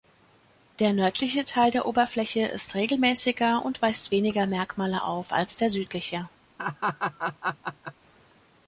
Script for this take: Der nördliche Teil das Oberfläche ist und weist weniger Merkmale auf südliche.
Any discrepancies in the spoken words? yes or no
yes